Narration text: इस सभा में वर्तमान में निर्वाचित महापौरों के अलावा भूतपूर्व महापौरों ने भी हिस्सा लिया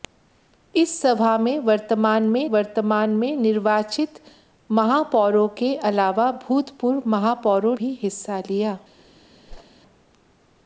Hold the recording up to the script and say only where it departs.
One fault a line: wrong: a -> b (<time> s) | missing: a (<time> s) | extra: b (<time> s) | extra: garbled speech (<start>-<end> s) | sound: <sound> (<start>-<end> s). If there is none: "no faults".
extra: वर्तमान में (2.5 s)
missing: ने (7.8 s)
sound: whoosh (9.5-9.7 s)